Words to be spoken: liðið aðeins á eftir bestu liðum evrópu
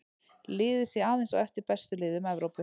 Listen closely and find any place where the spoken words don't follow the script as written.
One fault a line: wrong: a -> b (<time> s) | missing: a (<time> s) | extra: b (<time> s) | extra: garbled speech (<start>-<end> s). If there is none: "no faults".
extra: sé (0.9 s)